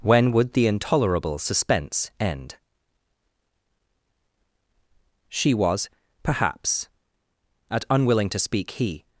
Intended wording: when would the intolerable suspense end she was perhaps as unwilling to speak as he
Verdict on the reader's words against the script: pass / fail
fail